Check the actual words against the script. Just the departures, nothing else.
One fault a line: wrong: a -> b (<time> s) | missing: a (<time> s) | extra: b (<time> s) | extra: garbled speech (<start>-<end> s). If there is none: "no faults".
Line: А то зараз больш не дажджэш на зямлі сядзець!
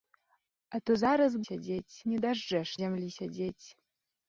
wrong: больш -> сядзець (1.5 s)
missing: на (2.7 s)